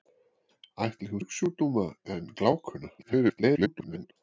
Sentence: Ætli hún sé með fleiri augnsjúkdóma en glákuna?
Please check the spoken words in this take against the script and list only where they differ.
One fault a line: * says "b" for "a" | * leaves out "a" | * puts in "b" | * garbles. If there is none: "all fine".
* leaves out "sé með fleiri"
* garbles